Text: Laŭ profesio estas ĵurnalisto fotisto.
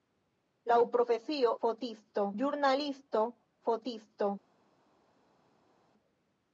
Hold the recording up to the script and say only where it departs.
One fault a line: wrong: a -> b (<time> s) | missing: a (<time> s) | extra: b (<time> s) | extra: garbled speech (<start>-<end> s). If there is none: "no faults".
wrong: estas -> fotisto (1.7 s)